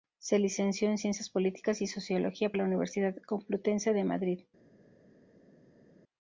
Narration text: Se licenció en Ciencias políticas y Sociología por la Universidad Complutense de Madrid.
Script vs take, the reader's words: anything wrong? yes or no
yes